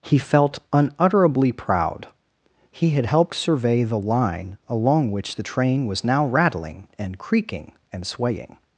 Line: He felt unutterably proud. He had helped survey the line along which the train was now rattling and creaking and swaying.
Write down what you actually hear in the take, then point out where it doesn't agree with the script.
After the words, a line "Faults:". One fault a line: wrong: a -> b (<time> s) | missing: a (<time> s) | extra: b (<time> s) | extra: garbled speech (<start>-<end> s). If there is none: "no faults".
He felt unutterably proud. He had helped survey the line along which the train was now rattling and creaking and swaying.
Faults:
no faults